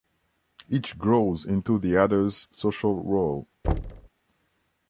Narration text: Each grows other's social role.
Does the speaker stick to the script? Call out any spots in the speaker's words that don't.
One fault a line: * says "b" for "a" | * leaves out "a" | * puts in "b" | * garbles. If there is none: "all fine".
* puts in "into the"